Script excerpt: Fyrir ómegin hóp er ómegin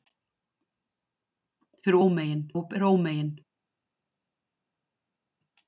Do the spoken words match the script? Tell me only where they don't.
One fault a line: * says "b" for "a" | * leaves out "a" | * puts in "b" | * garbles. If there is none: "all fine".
all fine